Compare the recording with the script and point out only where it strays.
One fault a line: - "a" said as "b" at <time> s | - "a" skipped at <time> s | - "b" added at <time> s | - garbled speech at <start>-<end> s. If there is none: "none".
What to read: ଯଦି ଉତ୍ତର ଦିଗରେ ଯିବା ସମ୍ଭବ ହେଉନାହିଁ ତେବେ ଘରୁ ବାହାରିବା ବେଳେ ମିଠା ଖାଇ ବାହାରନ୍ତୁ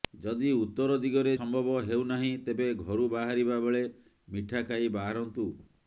- "ଯିବା" skipped at 1.3 s